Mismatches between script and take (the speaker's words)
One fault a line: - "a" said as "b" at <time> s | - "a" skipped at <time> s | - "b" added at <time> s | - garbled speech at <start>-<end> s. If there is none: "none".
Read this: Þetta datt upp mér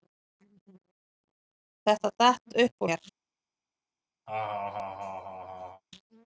none